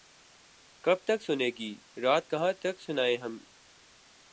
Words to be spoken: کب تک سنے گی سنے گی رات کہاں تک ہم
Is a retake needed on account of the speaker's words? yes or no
yes